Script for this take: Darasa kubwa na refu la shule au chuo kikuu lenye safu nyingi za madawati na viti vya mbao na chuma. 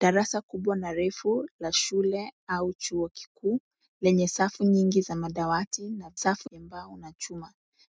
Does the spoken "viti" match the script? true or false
false